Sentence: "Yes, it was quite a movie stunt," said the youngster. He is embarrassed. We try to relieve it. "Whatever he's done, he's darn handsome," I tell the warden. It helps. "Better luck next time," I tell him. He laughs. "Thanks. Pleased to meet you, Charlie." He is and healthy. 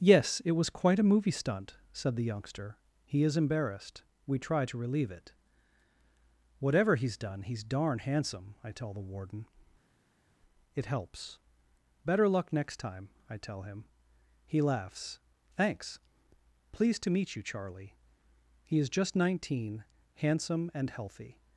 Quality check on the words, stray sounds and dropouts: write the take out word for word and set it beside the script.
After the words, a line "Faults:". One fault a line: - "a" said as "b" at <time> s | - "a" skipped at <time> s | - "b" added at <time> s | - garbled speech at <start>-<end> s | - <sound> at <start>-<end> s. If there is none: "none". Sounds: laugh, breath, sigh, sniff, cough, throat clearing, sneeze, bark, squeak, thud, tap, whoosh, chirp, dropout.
"Yes, it was quite a movie stunt," said the youngster. He is embarrassed. We try to relieve it. "Whatever he's done, he's darn handsome," I tell the warden. It helps. "Better luck next time," I tell him. He laughs. "Thanks. Pleased to meet you, Charlie." He is just nineteen, handsome and healthy.
Faults:
- "just nineteen handsome" added at 18.9 s